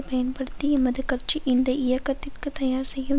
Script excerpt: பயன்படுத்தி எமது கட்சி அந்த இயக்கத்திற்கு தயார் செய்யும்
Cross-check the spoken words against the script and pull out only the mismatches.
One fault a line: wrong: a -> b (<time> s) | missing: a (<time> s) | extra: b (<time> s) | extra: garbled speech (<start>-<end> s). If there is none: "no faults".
wrong: அந்த -> இந்த (1.4 s)